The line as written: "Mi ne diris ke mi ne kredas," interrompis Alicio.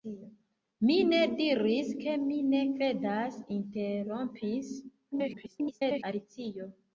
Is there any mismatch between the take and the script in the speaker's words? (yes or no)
yes